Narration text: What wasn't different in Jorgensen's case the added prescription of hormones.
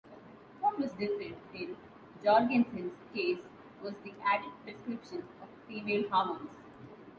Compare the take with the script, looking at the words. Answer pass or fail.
fail